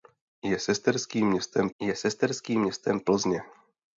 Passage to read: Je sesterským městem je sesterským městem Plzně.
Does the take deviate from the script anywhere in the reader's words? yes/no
no